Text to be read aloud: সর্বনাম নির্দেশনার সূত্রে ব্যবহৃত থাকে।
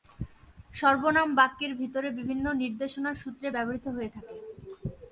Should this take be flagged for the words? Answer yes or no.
yes